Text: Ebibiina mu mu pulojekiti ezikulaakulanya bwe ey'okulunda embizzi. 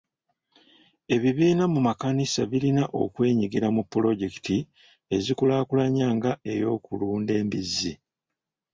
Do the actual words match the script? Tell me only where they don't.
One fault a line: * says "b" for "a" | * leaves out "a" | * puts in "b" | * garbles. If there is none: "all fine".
* puts in "makanisa birina okwenyigira"
* says "nga" for "bwe"